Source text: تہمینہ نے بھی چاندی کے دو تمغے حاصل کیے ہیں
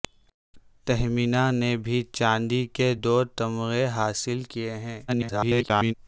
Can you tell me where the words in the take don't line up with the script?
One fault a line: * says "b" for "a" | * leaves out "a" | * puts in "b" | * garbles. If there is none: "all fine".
* garbles